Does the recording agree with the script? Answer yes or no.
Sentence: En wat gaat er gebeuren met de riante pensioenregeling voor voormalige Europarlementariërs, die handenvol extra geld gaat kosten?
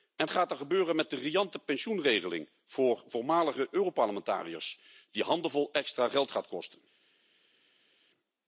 no